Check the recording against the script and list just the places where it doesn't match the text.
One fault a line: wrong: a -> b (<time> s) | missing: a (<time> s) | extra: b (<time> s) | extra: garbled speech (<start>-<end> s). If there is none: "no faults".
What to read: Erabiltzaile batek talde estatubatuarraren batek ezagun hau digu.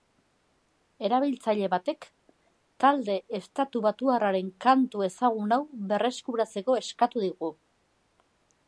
wrong: batek -> kantu (4.7 s)
extra: berreskuratzeko eskatu (5.9 s)